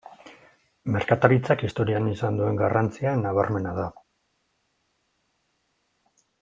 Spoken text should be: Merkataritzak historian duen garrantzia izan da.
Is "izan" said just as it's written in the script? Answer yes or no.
no